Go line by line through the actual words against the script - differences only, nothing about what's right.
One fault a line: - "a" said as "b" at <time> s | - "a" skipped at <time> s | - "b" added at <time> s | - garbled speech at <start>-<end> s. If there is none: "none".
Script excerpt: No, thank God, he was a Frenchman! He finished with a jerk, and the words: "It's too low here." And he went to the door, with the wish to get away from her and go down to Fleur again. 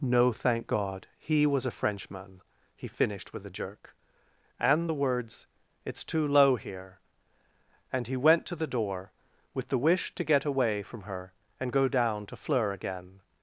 none